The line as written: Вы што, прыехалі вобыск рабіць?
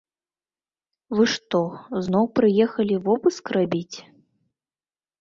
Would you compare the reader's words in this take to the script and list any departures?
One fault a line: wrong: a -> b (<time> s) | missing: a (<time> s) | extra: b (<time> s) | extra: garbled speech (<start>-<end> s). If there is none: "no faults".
extra: зноў (2.1 s)